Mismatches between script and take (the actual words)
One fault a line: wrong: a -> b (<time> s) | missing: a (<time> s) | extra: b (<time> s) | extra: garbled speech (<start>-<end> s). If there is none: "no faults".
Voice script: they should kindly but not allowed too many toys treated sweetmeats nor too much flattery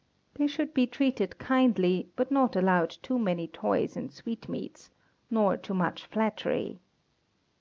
extra: be treated (0.7 s)
wrong: treated -> and (4.0 s)